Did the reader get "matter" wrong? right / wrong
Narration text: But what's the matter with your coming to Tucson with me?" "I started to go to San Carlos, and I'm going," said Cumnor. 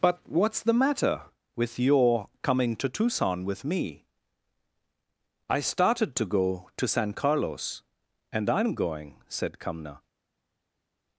right